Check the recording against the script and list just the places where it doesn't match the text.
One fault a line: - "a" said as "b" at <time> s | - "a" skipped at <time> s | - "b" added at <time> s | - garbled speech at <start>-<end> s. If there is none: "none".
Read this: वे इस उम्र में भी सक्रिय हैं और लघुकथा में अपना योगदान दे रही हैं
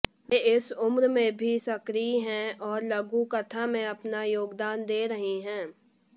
none